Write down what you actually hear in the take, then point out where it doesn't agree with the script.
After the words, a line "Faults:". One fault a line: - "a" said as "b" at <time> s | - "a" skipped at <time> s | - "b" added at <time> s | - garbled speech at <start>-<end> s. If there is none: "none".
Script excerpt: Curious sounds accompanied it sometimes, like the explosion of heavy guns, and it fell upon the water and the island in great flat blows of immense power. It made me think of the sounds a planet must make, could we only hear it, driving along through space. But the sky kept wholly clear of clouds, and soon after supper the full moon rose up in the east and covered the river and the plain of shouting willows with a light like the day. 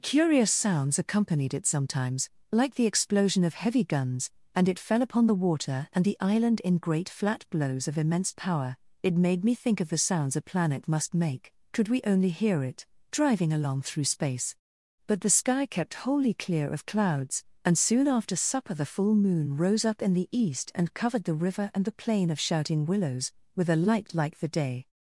Curious sounds accompanied it sometimes, like the explosion of heavy guns, and it fell upon the water and the island in great flat blows of immense power. It made me think of the sounds a planet must make, could we only hear it, driving along through space. But the sky kept wholly clear of clouds, and soon after supper the full moon rose up in the east and covered the river and the plain of shouting willows with a light like the day.
Faults:
none